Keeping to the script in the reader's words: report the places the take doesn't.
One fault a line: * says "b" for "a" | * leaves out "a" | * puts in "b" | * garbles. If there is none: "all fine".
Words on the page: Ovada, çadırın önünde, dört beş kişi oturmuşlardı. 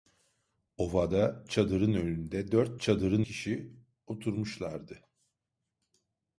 * says "çadırın" for "beş"